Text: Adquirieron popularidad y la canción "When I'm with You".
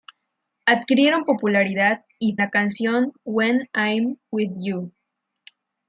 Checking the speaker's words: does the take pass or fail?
pass